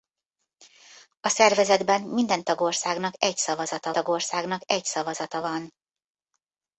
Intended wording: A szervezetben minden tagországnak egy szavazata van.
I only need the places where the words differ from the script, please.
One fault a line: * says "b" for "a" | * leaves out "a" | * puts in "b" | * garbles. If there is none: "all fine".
* puts in "tagországnak egy szavazata"